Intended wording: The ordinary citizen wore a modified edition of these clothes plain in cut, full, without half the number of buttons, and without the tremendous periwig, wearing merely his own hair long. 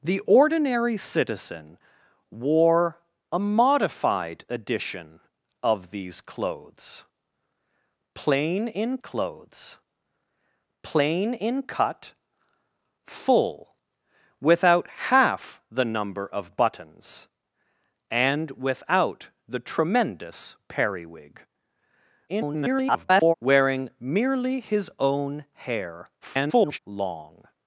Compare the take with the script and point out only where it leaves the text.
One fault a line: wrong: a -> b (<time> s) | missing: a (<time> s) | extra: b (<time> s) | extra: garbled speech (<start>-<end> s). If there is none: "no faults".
extra: clothes plain in (9.0 s)
extra: garbled speech (22.3-23.3 s)
extra: garbled speech (26.2-26.8 s)